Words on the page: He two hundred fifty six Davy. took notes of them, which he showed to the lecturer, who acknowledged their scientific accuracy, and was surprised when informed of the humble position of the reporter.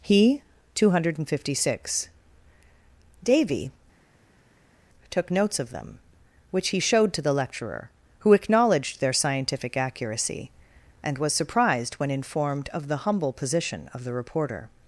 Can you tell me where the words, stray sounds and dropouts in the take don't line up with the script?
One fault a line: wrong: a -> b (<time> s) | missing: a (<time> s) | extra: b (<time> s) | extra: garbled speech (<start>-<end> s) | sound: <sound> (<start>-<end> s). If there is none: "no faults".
no faults